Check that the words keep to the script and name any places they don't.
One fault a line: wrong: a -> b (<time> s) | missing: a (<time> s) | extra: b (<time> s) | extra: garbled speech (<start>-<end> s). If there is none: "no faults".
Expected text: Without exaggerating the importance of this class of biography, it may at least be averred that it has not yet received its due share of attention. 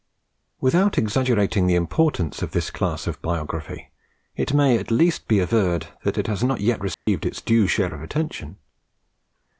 no faults